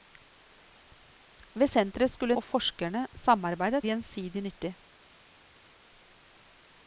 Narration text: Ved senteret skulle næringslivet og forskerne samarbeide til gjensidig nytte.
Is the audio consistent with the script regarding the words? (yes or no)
no